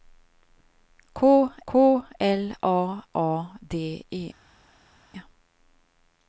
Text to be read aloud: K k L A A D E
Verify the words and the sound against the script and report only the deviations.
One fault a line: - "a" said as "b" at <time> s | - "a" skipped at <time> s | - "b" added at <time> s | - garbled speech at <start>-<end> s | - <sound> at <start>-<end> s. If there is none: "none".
none